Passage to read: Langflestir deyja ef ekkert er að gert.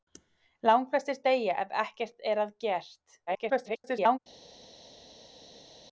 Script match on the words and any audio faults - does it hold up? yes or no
no